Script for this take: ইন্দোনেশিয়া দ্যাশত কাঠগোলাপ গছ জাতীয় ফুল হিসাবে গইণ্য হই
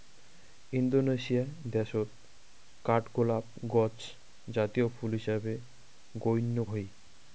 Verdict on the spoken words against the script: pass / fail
pass